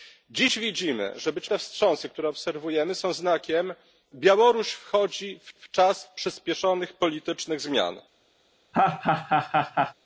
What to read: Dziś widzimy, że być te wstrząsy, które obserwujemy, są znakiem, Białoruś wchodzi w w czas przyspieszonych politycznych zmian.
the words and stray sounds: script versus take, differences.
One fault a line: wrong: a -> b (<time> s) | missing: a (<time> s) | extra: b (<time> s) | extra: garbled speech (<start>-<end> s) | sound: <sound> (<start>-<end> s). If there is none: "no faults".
sound: laugh (8.7-9.9 s)